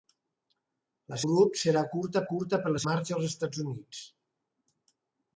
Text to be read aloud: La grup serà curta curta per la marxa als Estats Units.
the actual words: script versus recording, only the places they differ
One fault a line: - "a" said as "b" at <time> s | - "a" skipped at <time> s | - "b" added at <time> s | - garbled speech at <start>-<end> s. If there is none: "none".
none